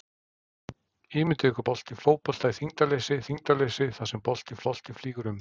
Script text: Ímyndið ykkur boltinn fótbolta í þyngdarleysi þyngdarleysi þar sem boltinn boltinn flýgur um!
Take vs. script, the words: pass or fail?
pass